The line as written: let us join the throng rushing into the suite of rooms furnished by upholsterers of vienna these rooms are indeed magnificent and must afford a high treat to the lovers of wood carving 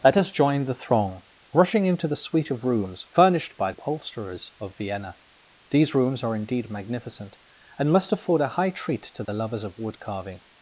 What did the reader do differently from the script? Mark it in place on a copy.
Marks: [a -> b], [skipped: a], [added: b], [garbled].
let us join the throng rushing into the suite of rooms furnished by upholsterers of vienna these rooms are indeed magnificent and must afford a high treat to the lovers of wood carving